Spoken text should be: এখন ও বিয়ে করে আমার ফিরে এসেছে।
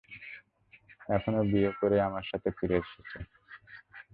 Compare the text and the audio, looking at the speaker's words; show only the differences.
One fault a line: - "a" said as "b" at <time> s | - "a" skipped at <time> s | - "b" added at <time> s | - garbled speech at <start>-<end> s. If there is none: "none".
- "সাথে" added at 2.3 s